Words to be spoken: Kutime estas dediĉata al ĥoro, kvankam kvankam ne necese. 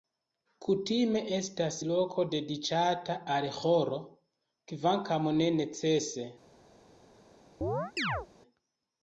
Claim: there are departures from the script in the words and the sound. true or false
true